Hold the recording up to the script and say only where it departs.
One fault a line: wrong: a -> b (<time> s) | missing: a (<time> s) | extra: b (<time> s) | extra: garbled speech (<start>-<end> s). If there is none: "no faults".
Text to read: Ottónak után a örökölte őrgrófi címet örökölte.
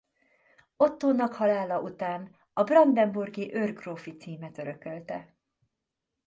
extra: halála (1.3 s)
wrong: örökölte -> brandenburgi (2.6 s)